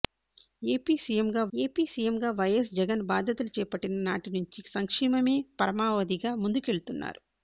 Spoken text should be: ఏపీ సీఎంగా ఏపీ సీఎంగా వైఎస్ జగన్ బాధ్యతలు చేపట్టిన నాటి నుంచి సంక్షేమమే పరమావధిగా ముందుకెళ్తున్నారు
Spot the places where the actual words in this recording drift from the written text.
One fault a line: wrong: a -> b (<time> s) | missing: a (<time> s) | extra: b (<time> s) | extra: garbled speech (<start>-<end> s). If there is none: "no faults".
no faults